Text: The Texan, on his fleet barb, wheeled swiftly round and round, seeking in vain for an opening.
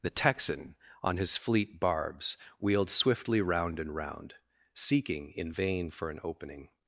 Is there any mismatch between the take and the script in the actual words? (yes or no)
yes